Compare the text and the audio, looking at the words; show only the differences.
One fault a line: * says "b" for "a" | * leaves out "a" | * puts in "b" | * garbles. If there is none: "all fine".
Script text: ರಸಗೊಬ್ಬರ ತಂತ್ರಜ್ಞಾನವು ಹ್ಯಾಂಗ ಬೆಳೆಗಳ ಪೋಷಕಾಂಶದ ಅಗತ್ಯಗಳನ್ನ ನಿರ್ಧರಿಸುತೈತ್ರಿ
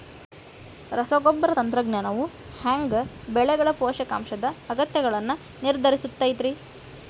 all fine